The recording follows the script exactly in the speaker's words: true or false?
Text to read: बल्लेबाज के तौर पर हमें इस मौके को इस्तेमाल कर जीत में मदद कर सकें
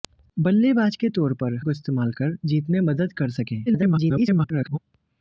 false